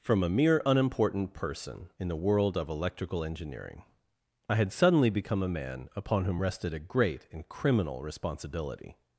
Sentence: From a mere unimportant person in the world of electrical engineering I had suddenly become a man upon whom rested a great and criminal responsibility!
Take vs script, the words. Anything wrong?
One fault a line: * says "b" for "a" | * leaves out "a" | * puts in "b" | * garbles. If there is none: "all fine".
all fine